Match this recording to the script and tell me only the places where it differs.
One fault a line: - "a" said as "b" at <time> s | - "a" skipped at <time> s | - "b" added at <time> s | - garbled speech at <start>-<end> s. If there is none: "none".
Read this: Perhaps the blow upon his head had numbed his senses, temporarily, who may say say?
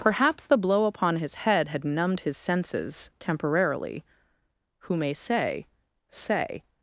none